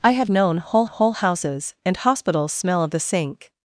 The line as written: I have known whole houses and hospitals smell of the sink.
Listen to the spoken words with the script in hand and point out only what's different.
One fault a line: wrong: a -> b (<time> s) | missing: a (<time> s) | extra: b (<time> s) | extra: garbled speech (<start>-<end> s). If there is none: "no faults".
extra: whole (0.8 s)